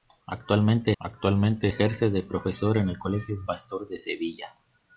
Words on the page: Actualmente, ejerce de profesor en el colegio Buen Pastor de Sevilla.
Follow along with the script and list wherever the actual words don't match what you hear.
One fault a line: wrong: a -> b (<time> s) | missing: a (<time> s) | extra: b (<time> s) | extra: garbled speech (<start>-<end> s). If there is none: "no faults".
extra: actualmente (1.0 s)
missing: Buen (3.4 s)